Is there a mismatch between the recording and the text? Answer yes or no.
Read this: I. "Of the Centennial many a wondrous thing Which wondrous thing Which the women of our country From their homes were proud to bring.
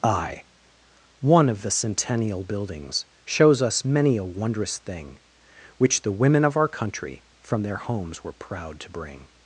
yes